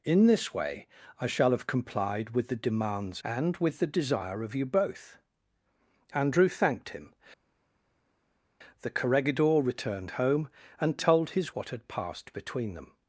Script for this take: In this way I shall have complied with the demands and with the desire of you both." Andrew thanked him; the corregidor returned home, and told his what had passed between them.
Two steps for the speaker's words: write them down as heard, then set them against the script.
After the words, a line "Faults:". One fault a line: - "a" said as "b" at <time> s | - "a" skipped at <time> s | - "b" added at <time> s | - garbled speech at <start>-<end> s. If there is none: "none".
In this way I shall have complied with the demands and with the desire of you both." Andrew thanked him; the corregidor returned home, and told his what had passed between them.
Faults:
none